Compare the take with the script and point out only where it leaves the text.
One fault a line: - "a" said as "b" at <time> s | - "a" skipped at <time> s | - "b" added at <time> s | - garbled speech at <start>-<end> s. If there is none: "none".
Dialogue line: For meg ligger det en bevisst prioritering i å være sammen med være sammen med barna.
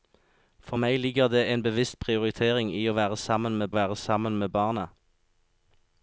none